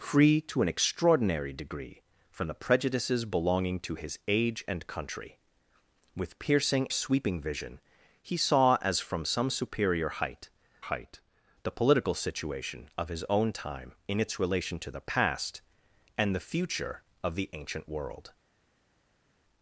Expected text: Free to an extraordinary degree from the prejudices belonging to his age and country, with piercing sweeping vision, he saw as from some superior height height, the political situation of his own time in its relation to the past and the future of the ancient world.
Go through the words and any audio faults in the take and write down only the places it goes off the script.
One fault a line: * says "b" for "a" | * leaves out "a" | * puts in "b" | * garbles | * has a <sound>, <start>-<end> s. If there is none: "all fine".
all fine